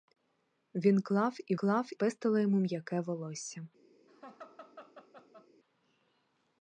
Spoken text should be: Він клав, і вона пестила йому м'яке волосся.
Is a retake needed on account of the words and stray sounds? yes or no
yes